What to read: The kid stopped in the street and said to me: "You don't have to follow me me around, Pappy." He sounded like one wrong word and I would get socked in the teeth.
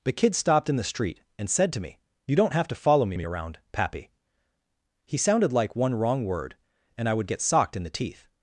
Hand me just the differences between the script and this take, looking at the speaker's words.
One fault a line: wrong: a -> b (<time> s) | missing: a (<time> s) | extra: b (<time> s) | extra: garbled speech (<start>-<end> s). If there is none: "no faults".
no faults